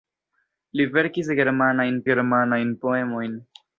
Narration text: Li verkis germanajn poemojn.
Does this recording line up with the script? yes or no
no